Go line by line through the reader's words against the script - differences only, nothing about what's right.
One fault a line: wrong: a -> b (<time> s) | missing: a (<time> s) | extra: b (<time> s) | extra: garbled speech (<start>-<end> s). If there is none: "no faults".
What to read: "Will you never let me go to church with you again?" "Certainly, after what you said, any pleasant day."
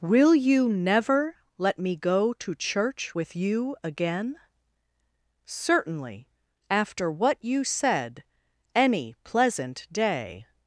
no faults